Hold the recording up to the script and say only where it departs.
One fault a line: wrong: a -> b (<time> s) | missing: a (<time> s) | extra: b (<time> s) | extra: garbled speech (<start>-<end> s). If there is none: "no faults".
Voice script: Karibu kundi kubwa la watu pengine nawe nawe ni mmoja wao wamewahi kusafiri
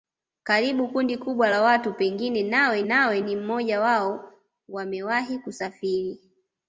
no faults